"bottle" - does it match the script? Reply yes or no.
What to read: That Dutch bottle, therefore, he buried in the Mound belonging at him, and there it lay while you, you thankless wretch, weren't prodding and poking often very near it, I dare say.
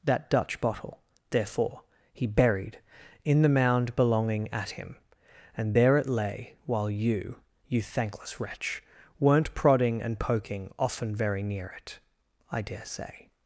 yes